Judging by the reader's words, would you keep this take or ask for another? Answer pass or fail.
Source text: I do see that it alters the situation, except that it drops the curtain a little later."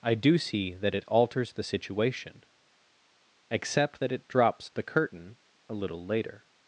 pass